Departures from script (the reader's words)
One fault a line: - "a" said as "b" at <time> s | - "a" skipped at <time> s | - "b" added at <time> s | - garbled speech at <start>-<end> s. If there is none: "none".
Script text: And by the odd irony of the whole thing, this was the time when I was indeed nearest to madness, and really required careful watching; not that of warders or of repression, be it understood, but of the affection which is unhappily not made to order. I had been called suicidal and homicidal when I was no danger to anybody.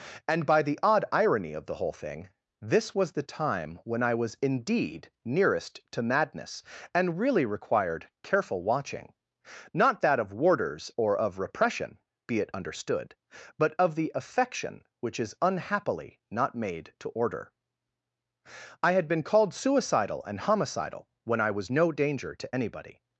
none